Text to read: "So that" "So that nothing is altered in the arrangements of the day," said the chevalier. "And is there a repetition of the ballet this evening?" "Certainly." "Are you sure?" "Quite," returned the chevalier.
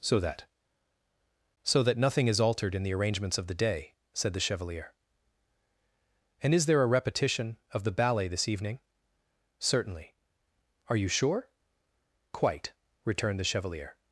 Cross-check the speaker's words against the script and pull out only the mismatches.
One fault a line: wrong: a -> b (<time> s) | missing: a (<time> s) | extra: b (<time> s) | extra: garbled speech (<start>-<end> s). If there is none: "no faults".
no faults